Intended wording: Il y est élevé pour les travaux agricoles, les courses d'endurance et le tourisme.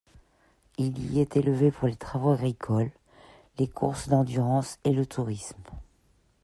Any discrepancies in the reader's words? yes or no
no